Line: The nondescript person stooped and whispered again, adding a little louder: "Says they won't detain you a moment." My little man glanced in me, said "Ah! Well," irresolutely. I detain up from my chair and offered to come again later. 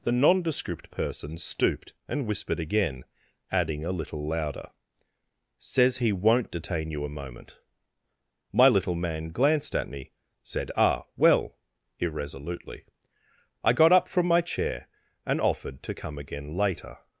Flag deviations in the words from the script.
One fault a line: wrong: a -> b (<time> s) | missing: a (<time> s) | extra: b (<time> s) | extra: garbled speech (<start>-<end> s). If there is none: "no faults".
wrong: they -> he (6.0 s)
wrong: in -> at (9.8 s)
wrong: detain -> got (13.7 s)